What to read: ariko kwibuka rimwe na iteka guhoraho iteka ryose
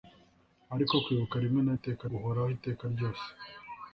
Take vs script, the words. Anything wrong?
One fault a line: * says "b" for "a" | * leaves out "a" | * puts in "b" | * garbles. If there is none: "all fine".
all fine